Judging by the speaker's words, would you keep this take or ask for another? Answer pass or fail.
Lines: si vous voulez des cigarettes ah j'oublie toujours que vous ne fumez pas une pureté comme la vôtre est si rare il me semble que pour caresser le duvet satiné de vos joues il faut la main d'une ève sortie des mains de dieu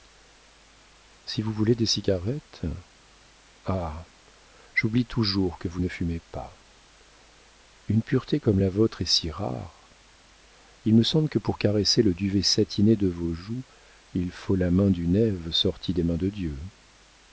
pass